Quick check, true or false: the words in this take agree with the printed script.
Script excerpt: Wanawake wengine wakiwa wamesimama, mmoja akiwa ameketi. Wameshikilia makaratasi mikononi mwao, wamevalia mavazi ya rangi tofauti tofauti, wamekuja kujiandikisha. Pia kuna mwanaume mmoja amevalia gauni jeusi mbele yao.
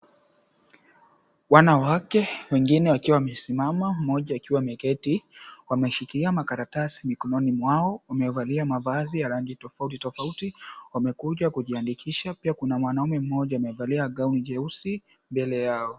true